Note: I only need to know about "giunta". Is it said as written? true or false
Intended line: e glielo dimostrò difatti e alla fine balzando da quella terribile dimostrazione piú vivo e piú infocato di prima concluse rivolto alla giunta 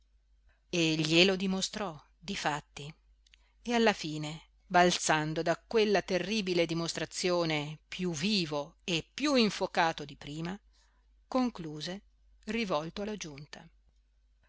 true